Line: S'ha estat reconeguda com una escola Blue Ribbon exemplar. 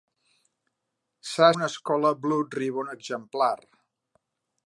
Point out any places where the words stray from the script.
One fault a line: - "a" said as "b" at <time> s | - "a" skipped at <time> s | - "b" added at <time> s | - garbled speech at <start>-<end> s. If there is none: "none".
- "estat reconeguda com" skipped at 1.5 s